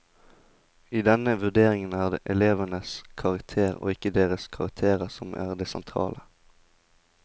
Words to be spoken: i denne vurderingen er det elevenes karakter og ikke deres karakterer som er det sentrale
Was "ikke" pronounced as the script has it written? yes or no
yes